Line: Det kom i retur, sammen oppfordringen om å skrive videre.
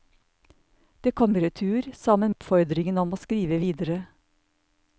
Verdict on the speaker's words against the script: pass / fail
pass